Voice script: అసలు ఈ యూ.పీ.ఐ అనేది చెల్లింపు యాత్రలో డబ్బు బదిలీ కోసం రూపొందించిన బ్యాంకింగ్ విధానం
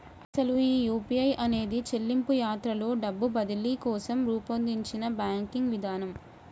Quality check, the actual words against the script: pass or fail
pass